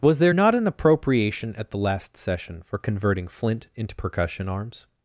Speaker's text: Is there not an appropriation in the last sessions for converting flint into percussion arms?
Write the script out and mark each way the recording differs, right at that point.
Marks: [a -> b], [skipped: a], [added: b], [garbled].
[Is -> Was] there not an appropriation [in -> at] the last [sessions -> session] for converting flint into percussion arms?